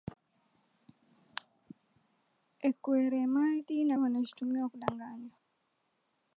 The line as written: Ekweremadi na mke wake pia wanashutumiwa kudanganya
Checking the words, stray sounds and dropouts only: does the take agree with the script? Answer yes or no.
no